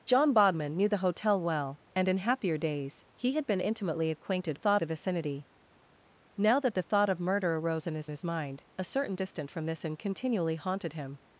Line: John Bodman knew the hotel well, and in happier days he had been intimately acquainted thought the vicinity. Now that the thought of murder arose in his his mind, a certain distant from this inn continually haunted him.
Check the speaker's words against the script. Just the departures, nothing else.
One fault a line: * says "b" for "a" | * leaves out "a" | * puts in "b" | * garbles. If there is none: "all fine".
all fine